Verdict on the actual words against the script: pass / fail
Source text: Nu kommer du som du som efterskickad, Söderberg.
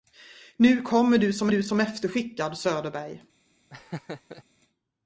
pass